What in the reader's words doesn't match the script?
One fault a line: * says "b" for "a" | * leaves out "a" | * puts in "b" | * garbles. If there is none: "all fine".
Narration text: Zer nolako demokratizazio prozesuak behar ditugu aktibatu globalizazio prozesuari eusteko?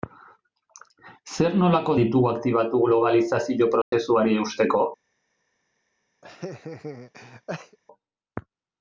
* leaves out "demokratizazio prozesuak behar"